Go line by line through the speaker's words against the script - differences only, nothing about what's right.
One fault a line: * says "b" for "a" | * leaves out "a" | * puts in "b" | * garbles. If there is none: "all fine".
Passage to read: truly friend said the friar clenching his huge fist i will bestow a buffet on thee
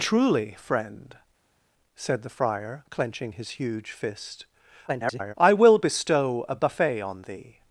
* garbles